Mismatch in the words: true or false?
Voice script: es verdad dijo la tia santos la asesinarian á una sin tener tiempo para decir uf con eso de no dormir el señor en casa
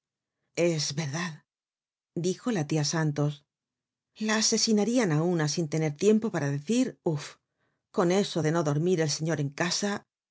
false